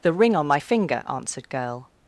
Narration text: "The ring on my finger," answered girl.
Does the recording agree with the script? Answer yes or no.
yes